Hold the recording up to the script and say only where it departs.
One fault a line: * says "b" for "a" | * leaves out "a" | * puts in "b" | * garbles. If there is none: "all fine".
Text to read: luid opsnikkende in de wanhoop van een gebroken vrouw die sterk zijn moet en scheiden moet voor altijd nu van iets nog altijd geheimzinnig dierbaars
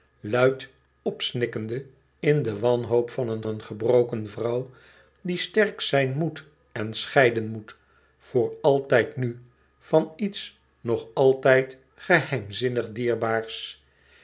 * puts in "een"